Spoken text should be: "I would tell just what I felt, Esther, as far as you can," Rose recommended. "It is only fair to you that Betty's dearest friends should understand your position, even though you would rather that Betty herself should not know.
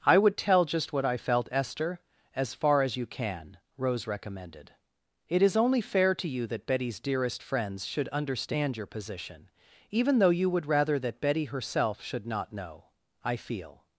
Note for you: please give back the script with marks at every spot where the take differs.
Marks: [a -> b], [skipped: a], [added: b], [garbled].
"I would tell just what I felt, Esther, as far as you can," Rose recommended. "It is only fair to you that Betty's dearest friends should understand your position, even though you would rather that Betty herself should not know. [added: I feel]